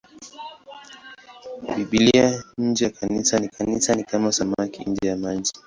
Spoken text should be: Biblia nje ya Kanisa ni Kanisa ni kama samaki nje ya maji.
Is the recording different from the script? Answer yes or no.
no